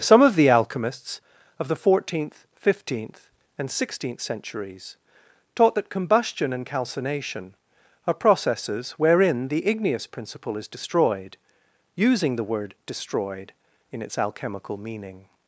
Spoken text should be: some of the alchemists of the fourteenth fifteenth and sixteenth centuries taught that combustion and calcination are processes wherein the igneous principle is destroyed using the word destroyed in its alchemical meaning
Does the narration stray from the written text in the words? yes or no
no